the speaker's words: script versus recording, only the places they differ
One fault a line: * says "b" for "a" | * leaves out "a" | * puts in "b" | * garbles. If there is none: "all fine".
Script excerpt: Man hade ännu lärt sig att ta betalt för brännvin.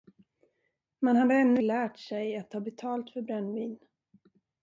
all fine